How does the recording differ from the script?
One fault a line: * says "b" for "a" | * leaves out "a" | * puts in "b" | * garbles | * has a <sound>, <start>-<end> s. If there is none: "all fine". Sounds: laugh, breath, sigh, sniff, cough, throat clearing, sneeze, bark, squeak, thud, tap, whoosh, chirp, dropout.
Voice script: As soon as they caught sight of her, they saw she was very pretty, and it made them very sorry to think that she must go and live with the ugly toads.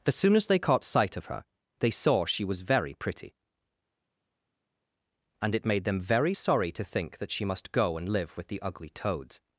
all fine